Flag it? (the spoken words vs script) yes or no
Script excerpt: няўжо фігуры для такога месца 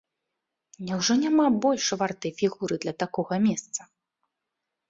yes